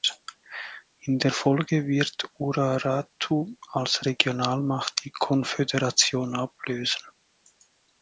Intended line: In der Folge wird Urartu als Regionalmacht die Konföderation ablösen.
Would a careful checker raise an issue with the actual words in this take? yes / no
no